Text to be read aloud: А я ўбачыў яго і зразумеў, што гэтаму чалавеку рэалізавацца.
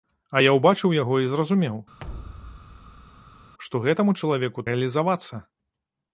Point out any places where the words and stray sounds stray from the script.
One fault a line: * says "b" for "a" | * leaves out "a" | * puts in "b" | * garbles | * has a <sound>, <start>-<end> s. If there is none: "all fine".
* has a thud, 2.0-3.5 s